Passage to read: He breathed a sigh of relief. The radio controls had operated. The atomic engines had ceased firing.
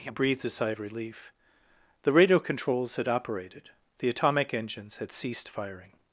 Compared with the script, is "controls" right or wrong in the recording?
right